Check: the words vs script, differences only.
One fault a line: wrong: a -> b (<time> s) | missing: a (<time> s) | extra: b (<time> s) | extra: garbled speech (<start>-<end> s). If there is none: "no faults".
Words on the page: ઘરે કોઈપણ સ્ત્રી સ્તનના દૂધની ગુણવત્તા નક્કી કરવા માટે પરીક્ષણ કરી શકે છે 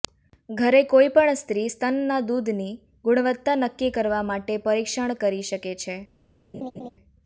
no faults